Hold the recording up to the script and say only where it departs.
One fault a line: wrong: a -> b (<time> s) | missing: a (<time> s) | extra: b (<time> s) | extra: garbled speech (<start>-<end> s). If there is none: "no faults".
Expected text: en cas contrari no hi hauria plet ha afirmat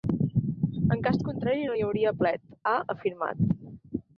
no faults